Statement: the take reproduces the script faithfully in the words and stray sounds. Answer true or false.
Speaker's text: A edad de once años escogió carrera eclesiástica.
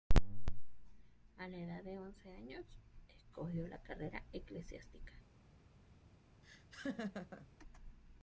false